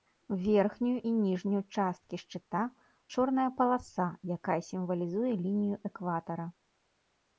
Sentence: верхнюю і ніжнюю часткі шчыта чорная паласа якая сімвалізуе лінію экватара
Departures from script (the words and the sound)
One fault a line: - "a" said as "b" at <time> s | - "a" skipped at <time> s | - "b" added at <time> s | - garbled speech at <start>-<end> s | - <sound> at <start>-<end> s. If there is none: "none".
none